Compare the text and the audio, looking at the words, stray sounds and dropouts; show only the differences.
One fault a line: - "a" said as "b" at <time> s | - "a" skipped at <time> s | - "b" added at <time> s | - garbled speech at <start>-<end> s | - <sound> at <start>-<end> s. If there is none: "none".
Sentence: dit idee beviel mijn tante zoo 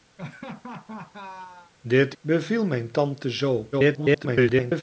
- laugh at 0.2-1.7 s
- "idee" skipped at 2.1 s
- garbled speech at 3.7-4.8 s